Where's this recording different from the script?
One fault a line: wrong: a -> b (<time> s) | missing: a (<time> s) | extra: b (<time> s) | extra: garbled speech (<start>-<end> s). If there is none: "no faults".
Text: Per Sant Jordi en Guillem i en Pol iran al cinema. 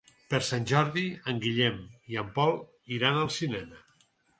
no faults